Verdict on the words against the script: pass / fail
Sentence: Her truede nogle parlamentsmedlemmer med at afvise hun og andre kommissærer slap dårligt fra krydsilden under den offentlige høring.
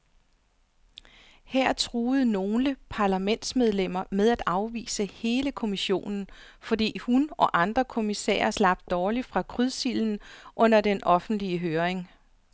fail